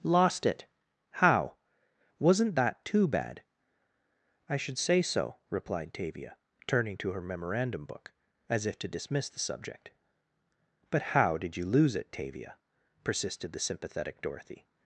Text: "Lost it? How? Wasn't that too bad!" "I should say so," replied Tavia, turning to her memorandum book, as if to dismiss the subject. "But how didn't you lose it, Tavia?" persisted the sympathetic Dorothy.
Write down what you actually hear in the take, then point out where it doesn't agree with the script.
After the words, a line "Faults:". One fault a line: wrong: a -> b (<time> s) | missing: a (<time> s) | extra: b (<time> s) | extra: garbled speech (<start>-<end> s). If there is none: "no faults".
"Lost it? How? Wasn't that too bad!" "I should say so," replied Tavia, turning to her memorandum book, as if to dismiss the subject. "But how did you lose it, Tavia?" persisted the sympathetic Dorothy.
Faults:
wrong: didn't -> did (11.4 s)